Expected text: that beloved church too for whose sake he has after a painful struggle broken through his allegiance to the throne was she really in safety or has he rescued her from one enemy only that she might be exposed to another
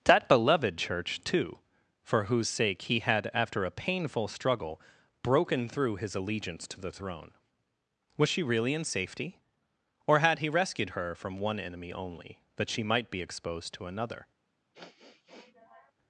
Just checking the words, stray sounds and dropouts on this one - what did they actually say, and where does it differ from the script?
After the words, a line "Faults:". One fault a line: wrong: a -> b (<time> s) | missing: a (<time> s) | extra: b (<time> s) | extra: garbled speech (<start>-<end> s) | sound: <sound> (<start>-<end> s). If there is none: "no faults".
that beloved church too for whose sake he had after a painful struggle broken through his allegiance to the throne was she really in safety or had he rescued her from one enemy only that she might be exposed to another
Faults:
wrong: has -> had (3.0 s)
wrong: has -> had (10.2 s)
sound: sniff (14.7-15.9 s)